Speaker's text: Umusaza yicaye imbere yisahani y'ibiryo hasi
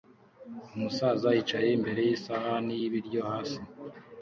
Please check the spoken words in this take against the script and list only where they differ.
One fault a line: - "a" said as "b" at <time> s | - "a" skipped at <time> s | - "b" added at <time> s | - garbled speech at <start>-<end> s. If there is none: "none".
none